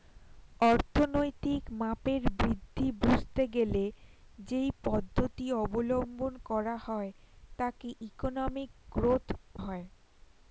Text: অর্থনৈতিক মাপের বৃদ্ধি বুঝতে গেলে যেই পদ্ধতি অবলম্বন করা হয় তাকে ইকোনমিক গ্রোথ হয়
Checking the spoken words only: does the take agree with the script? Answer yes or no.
yes